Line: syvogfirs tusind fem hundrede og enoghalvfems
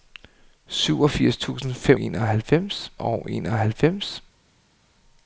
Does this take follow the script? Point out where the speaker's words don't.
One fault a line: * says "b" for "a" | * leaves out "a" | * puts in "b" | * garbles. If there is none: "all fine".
* says "enoghalvfems" for "hundrede"